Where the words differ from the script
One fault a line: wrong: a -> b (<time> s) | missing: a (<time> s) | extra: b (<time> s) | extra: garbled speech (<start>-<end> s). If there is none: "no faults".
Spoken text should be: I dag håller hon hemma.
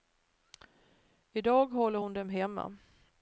extra: dem (2.1 s)